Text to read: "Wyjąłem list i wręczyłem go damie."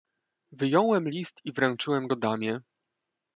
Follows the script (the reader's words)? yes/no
yes